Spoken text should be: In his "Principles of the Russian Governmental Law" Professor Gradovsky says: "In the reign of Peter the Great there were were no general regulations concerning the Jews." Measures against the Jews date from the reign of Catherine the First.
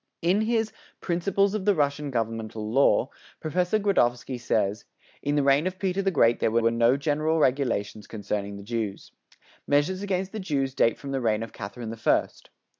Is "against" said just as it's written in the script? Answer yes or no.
yes